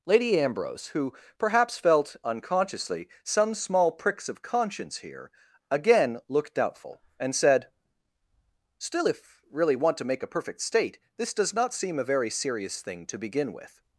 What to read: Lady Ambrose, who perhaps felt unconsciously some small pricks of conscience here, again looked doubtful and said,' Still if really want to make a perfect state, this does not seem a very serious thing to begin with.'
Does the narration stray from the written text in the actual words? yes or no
no